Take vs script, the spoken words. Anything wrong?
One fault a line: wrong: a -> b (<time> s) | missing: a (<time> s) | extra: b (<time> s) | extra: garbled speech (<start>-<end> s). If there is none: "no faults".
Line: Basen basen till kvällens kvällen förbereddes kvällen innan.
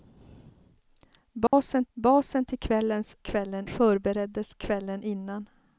no faults